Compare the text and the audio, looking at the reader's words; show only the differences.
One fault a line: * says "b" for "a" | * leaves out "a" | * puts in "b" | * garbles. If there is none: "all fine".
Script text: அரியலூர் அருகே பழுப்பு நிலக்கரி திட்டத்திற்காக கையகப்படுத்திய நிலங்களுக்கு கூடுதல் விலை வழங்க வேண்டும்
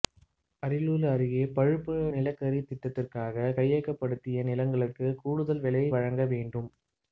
all fine